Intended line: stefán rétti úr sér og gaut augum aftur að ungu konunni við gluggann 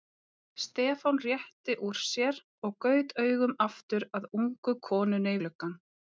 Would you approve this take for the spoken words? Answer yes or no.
no